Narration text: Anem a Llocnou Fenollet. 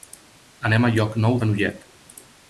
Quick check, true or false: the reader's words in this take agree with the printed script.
true